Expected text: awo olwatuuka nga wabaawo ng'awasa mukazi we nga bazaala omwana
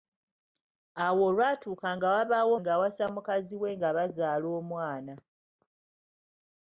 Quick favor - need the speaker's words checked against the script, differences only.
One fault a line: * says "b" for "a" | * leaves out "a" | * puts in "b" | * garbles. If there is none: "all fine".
all fine